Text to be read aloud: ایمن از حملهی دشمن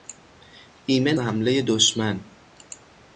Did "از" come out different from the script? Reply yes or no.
yes